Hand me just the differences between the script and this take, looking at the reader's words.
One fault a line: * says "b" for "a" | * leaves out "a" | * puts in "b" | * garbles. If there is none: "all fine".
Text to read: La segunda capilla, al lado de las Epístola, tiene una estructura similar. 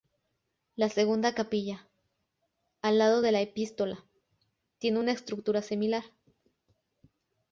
* says "la" for "las"